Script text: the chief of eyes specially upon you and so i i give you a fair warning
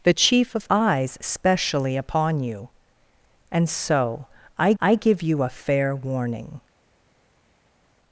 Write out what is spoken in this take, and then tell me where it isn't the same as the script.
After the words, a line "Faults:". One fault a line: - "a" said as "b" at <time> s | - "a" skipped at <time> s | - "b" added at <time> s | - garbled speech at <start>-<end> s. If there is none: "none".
the chief of eyes specially upon you and so i i give you a fair warning
Faults:
none